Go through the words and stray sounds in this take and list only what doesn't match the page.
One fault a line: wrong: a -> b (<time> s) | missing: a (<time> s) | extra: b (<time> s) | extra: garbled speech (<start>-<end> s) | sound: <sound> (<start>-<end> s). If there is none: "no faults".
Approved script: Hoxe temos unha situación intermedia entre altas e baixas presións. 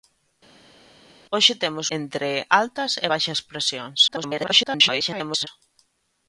missing: unha situación intermedia (1.9 s)
extra: garbled speech (4.1-5.5 s)